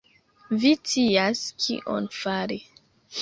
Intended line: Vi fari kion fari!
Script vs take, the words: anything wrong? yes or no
yes